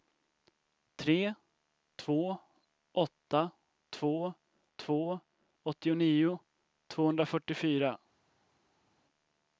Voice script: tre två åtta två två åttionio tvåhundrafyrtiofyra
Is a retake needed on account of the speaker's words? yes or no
no